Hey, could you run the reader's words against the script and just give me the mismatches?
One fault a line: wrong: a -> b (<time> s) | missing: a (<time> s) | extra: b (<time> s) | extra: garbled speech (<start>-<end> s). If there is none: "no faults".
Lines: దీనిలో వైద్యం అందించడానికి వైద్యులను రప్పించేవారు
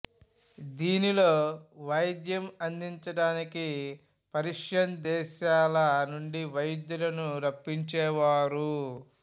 extra: పర్షియన్ దేశాల నుండి (4.3 s)